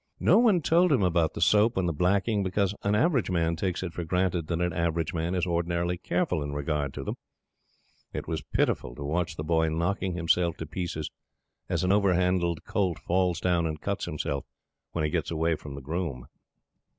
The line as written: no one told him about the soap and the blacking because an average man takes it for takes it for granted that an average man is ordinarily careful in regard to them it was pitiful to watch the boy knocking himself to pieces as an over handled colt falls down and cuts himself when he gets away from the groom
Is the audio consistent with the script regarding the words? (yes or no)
no